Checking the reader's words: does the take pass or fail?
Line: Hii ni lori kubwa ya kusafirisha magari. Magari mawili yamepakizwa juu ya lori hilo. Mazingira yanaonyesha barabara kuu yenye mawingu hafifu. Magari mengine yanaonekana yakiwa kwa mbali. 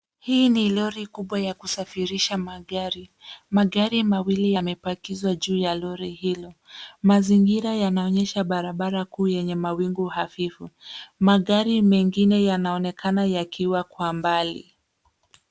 pass